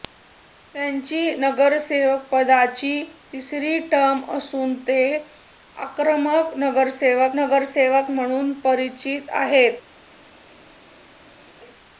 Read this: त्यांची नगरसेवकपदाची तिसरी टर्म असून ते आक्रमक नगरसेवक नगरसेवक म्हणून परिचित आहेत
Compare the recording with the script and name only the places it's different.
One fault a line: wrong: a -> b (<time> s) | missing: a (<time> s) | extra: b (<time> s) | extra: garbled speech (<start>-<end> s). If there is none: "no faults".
no faults